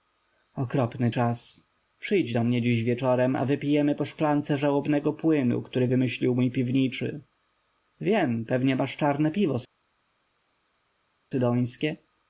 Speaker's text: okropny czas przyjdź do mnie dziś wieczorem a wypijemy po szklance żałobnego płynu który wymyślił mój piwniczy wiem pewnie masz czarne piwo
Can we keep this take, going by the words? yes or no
yes